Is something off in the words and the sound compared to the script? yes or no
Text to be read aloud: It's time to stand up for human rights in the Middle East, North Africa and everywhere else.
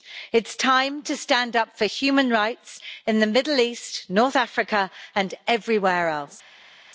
no